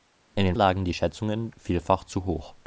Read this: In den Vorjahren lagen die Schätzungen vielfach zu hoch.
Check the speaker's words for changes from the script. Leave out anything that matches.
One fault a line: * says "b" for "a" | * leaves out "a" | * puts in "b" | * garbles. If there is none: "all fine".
* leaves out "Vorjahren"